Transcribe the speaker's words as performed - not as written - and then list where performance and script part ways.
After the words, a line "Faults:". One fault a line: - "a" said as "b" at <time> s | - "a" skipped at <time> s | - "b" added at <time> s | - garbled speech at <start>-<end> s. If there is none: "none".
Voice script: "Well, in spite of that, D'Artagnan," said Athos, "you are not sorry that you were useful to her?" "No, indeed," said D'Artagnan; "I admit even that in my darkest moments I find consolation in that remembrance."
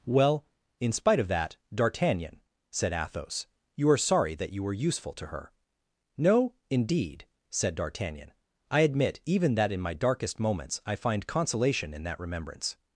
"Well, in spite of that, D'Artagnan," said Athos, "you are sorry that you were useful to her?" "No, indeed," said D'Artagnan; "I admit even that in my darkest moments I find consolation in that remembrance."
Faults:
- "not" skipped at 4.0 s